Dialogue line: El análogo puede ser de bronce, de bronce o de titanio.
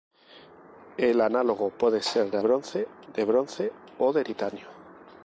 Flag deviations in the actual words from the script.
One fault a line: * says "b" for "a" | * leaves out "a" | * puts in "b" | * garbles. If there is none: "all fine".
all fine